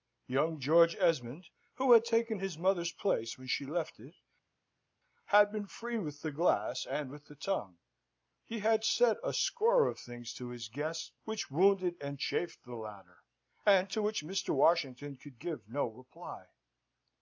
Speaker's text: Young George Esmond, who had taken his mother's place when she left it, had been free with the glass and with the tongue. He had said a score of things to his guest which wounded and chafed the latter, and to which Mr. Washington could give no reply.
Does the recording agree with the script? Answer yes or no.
yes